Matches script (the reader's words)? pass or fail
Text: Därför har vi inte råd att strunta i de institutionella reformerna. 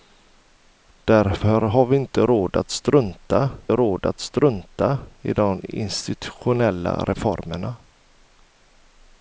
fail